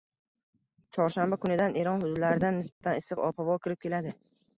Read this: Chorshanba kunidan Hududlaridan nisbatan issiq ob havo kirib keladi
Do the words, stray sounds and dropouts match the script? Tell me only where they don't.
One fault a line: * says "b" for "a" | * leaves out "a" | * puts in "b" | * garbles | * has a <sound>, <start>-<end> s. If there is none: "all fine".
* puts in "Eron"
* has a dropout, 2.7-2.8 s